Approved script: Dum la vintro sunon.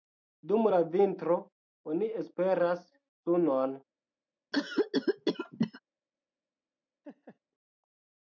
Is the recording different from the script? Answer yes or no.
yes